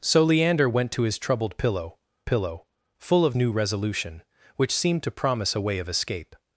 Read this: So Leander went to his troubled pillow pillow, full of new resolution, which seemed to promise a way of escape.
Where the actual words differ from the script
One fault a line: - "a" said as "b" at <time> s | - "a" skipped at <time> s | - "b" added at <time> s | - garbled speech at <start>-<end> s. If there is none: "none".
none